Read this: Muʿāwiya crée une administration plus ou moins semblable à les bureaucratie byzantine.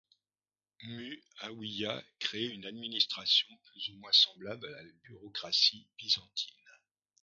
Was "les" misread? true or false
true